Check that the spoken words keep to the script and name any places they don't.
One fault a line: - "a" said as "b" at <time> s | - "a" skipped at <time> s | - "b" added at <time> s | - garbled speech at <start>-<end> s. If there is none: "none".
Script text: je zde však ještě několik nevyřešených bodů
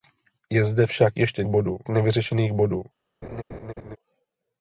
- "několik" said as "bodů" at 1.5 s